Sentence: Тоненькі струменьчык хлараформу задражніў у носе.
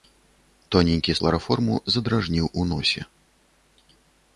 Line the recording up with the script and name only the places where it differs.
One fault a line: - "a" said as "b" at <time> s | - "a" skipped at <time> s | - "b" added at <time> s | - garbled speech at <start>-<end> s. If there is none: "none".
- "струменьчык" skipped at 1.1 s